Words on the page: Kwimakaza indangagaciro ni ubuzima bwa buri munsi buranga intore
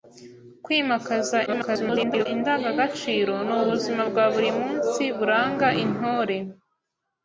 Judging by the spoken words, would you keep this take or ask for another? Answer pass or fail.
fail